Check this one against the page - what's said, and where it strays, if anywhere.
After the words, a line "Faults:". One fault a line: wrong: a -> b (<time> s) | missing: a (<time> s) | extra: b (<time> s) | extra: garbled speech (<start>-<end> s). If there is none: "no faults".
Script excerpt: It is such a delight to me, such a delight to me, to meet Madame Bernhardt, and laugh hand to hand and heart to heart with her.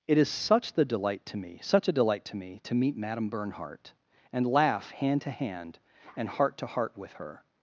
It is such the delight to me, such a delight to me, to meet Madame Bernhardt, and laugh hand to hand and heart to heart with her.
Faults:
wrong: a -> the (0.7 s)